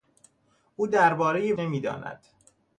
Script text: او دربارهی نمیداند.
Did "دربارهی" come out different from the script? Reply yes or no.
no